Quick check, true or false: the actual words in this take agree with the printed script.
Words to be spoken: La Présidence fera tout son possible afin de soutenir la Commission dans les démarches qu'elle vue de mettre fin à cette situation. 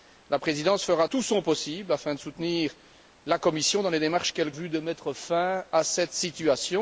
true